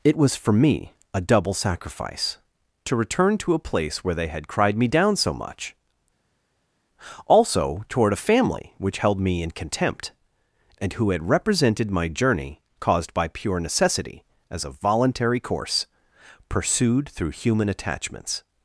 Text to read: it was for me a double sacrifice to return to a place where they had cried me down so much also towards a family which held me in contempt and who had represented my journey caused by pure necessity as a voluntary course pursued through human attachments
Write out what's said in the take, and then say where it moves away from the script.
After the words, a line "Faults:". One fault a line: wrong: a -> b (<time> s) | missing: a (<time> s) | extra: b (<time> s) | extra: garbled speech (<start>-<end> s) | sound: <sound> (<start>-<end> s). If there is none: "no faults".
it was for me a double sacrifice to return to a place where they had cried me down so much also toward a family which held me in contempt and who had represented my journey caused by pure necessity as a voluntary course pursued through human attachments
Faults:
wrong: towards -> toward (7.9 s)